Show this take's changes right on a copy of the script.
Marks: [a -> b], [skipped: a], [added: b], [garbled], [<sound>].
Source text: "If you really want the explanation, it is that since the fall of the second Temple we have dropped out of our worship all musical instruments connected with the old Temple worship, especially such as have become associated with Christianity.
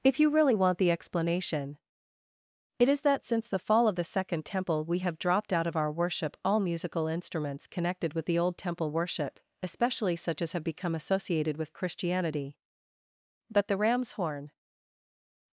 "If you really want the explanation, it is that since the fall of the second Temple we have dropped out of our worship all musical instruments connected with the old Temple worship, especially such as have become associated with Christianity. [added: But the ram's horn]